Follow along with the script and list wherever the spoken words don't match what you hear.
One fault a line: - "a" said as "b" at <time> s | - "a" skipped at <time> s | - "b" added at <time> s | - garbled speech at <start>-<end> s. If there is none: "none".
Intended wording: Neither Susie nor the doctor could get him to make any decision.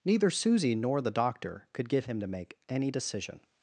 none